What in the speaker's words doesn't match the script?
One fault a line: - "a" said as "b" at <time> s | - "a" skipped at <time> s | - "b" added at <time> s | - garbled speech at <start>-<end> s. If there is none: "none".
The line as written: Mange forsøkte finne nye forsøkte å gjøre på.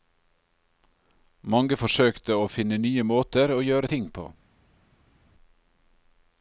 - "å" added at 2.4 s
- "forsøkte" said as "måter" at 3.0 s
- "ting" added at 3.9 s